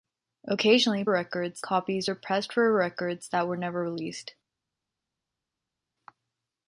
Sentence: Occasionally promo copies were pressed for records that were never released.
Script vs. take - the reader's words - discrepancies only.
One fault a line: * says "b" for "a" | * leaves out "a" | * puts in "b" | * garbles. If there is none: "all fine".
* says "records" for "promo"